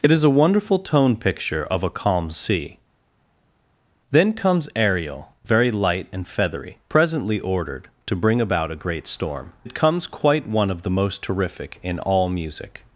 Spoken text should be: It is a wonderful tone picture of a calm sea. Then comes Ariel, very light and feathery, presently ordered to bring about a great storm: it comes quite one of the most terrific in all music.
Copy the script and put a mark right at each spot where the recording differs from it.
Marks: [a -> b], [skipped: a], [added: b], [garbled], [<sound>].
It is a wonderful tone picture of a calm sea. Then comes Ariel, very light and feathery, presently ordered to bring about a great storm: it comes quite one of the most terrific in all music.